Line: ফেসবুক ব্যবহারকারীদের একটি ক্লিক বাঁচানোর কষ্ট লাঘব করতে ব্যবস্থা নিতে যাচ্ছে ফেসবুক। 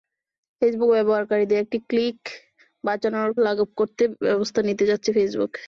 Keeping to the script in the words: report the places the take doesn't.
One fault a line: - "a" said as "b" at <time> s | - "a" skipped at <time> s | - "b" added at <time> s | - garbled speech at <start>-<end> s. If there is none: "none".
- "কষ্ট" skipped at 3.3 s